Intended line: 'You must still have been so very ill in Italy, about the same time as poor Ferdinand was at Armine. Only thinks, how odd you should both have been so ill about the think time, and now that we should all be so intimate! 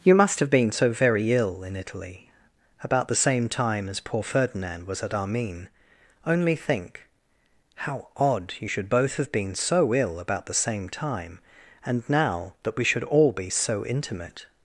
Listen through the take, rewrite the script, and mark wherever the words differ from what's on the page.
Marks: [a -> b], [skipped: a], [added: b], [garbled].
'You must [skipped: still] have been so very ill in Italy, about the same time as poor Ferdinand was at Armine. Only [thinks, -> think] how odd you should both have been so ill about the [think -> same] time, and now that we should all be so intimate!